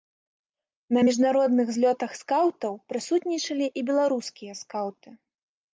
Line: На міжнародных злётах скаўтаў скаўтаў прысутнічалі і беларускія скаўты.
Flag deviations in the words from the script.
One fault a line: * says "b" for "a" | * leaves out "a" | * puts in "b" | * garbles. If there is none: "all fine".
* leaves out "скаўтаў"